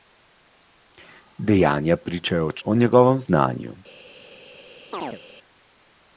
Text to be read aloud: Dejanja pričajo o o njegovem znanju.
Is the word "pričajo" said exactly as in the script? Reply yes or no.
yes